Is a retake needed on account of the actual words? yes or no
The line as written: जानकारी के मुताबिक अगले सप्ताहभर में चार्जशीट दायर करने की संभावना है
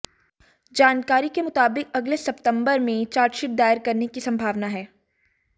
no